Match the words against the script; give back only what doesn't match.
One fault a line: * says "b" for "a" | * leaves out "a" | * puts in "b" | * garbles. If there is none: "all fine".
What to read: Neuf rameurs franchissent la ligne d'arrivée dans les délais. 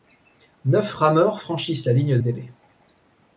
* leaves out "d'arrivée dans les"